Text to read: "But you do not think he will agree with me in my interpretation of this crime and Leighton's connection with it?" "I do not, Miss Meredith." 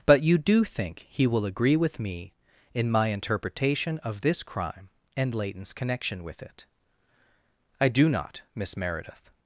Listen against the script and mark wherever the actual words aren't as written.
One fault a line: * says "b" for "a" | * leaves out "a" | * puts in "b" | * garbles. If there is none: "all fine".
* leaves out "not"